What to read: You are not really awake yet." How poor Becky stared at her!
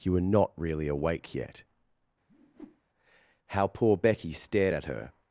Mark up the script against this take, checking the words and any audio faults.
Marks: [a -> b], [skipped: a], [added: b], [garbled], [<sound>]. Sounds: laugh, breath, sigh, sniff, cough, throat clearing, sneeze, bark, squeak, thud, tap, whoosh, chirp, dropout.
You [are -> were] not really awake yet." [whoosh] How poor Becky stared at her!